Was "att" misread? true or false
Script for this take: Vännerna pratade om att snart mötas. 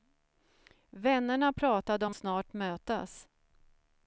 true